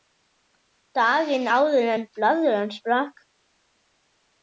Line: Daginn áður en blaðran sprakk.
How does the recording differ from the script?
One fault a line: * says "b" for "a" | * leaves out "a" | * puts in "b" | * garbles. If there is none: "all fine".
all fine